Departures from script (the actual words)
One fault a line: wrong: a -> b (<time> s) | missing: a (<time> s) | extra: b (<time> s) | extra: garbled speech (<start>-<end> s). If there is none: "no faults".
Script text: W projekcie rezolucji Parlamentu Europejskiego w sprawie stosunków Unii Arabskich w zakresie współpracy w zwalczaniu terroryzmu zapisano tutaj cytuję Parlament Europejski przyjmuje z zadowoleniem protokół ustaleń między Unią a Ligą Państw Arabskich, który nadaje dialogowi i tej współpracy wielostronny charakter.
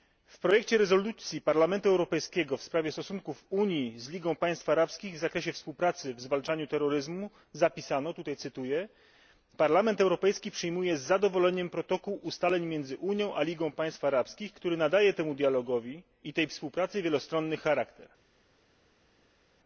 extra: z Ligą Państw (4.0 s)
extra: temu (15.1 s)